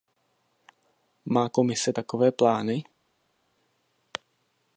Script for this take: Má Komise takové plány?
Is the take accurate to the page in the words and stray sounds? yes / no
yes